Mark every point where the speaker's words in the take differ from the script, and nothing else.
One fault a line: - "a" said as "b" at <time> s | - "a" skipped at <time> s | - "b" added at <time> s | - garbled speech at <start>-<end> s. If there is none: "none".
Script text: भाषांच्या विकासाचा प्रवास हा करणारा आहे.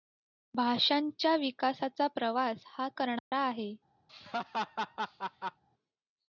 none